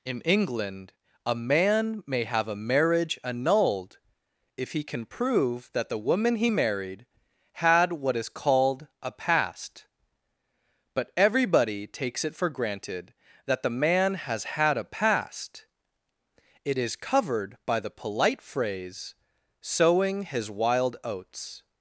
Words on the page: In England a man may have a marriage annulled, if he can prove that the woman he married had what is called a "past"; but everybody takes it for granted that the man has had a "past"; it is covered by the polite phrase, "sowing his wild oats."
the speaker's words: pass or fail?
pass